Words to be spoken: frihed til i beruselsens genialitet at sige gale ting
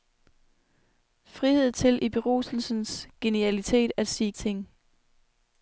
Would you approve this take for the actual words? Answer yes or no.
no